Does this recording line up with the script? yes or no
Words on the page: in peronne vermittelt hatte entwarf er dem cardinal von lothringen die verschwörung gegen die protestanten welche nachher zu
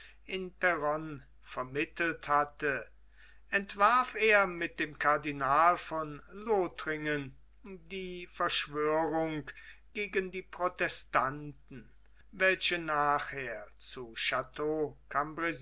no